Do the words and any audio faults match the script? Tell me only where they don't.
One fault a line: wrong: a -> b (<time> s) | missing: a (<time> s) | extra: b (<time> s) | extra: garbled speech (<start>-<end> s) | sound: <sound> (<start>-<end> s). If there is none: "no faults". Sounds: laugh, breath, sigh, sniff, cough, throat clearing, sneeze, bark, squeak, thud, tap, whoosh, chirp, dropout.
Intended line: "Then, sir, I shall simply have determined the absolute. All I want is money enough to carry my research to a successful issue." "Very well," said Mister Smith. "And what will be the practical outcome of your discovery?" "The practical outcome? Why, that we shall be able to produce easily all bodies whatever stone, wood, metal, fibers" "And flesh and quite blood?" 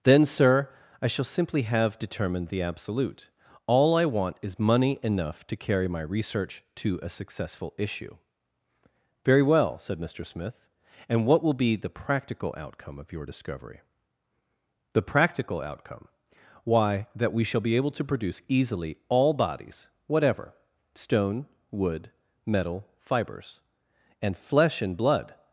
missing: quite (25.0 s)